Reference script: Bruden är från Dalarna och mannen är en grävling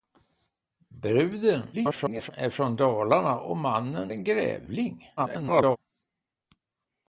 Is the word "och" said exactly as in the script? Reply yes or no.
yes